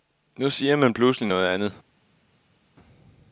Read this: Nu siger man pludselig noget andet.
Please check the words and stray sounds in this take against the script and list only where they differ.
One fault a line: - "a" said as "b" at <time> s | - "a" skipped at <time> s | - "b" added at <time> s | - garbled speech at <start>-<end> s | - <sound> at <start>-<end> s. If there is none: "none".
none